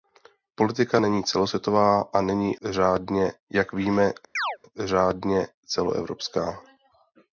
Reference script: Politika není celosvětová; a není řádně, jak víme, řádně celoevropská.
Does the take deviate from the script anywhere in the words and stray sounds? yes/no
yes